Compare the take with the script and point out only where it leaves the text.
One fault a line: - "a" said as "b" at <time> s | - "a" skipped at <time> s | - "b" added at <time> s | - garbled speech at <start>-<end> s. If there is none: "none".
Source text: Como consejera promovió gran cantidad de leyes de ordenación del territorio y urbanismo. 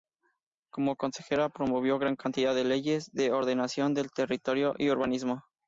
none